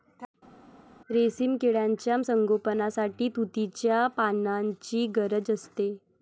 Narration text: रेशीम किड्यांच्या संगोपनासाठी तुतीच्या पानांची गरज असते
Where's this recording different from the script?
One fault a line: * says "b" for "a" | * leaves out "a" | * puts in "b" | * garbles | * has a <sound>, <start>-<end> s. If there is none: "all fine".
all fine